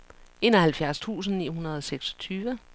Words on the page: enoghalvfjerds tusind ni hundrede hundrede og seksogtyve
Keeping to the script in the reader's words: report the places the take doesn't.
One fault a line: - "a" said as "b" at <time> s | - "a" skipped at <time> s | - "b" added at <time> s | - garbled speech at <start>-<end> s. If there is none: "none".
- "hundrede" skipped at 1.8 s